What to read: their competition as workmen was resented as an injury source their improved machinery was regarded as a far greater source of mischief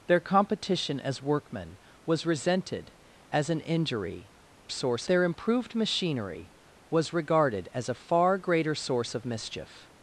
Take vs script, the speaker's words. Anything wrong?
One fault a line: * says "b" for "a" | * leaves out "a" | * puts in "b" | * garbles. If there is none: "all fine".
all fine